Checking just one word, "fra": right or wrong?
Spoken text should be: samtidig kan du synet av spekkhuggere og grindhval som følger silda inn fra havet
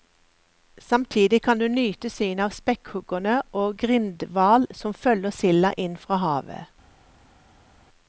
right